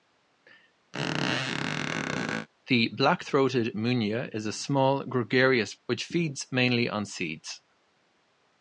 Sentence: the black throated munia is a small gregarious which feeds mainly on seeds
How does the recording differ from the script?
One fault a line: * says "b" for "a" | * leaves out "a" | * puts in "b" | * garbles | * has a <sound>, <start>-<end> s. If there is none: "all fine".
* has a squeak, 0.9-2.5 s